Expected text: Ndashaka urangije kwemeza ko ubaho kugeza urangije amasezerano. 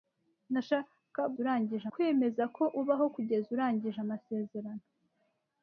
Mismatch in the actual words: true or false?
false